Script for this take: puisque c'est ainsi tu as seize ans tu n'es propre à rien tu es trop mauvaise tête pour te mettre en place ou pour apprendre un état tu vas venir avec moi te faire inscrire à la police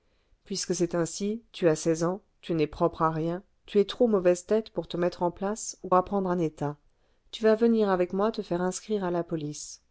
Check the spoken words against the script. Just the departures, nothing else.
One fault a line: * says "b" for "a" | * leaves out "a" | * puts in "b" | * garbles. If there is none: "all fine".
* leaves out "pour"